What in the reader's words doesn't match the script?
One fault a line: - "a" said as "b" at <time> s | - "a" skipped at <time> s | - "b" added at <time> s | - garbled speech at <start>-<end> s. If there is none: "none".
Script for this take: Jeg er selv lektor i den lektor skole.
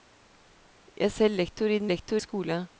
none